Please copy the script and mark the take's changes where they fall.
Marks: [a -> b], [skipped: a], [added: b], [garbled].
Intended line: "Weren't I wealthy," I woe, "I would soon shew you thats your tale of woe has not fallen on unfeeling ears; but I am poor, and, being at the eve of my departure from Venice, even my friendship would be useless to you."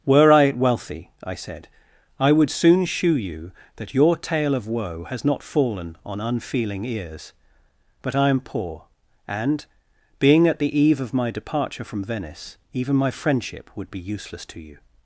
["Weren't -> Were] I wealthy," I [woe, -> said] "I would soon shew you [thats -> that] your tale of woe has not fallen on unfeeling ears; but I am poor, and, being at the eve of my departure from Venice, even my friendship would be useless to you."